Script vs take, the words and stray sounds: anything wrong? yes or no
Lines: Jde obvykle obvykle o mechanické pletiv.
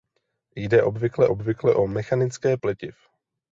no